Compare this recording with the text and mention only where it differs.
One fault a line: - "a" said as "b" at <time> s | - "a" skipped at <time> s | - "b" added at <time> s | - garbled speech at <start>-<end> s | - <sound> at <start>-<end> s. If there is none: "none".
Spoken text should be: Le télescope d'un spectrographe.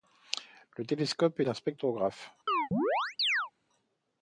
- chirp at 2.5-3.5 s